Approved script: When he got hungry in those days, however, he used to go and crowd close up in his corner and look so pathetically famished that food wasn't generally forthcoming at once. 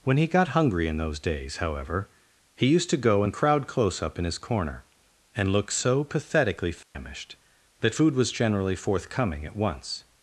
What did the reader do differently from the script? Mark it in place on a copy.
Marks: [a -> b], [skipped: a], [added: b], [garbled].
When he got hungry in those days, however, he used to go and crowd close up in his corner and look so pathetically famished that food [wasn't -> was] generally forthcoming at once.